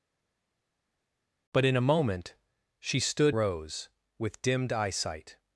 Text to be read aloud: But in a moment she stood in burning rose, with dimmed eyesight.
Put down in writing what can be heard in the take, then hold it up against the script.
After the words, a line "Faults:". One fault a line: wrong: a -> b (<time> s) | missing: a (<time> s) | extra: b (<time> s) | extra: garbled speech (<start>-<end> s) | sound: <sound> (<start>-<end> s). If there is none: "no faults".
But in a moment she stood rose, with dimmed eyesight.
Faults:
missing: in burning (3.4 s)